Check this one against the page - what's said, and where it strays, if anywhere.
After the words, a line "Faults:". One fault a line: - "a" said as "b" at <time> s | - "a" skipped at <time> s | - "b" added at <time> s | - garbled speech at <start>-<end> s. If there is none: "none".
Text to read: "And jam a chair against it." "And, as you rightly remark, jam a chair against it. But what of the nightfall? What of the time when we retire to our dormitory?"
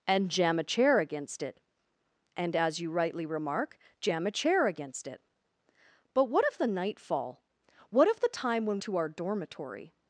"And jam a chair against it." "And, as you rightly remark, jam a chair against it. But what of the nightfall? What of the time when to our dormitory?"
Faults:
- "we retire" skipped at 8.8 s